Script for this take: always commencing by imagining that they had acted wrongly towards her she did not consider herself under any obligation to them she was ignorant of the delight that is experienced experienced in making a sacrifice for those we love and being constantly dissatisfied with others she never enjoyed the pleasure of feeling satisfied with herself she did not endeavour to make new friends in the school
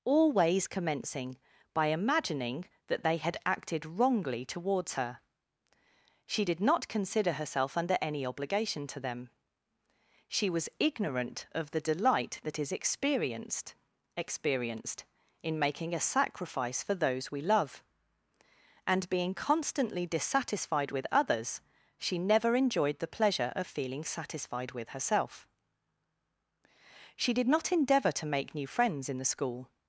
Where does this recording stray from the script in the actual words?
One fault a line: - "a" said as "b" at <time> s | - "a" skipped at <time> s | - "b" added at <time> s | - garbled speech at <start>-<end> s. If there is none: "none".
none